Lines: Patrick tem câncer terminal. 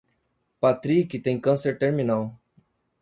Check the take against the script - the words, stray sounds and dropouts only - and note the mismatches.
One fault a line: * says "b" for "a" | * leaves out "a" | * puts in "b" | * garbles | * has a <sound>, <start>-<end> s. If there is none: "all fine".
all fine